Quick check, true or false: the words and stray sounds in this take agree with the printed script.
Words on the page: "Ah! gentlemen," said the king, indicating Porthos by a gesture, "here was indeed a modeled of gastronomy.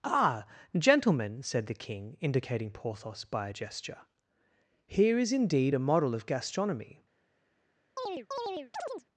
false